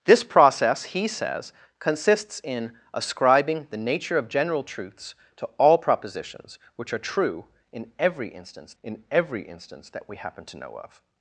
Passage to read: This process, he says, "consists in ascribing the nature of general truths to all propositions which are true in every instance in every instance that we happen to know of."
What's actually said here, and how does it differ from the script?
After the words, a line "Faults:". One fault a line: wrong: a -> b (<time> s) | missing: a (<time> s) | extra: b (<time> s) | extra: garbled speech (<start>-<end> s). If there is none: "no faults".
This process, he says, "consists in ascribing the nature of general truths to all propositions which are true in every instance in every instance that we happen to know of."
Faults:
no faults